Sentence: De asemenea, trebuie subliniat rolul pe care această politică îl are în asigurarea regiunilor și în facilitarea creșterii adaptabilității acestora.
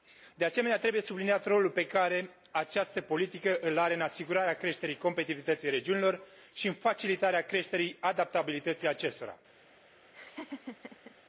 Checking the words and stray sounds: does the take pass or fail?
fail